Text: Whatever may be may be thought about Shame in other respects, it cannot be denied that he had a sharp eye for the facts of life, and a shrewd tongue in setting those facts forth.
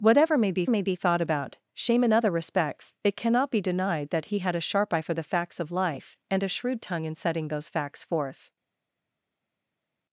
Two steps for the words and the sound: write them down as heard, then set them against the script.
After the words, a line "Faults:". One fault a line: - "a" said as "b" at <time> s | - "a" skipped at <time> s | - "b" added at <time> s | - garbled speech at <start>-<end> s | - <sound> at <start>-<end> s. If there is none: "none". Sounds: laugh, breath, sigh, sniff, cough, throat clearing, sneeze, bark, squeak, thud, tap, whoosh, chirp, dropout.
Whatever may be may be thought about Shame in other respects, it cannot be denied that he had a sharp eye for the facts of life, and a shrewd tongue in setting those facts forth.
Faults:
none